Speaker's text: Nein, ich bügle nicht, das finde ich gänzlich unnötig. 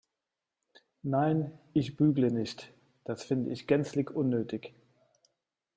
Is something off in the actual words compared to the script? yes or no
no